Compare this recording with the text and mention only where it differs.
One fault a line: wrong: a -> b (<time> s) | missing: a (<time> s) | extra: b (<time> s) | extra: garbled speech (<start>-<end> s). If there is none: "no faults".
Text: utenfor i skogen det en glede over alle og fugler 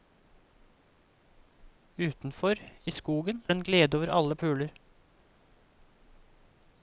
no faults